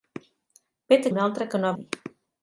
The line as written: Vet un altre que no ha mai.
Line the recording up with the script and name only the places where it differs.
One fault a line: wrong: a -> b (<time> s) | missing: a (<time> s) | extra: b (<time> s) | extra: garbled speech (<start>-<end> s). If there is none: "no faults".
no faults